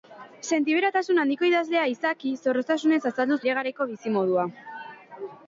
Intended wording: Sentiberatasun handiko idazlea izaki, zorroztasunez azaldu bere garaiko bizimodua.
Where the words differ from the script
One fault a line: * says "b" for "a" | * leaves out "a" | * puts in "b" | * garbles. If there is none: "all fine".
all fine